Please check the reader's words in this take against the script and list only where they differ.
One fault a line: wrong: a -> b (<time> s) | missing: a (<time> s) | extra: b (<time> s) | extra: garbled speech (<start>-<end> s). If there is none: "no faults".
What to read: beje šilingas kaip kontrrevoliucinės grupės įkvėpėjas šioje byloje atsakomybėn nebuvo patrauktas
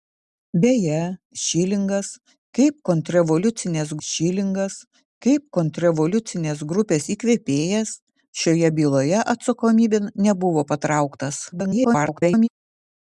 extra: šilingas kaip kontrrevoliucinės (4.1 s)
extra: garbled speech (11.5-12.5 s)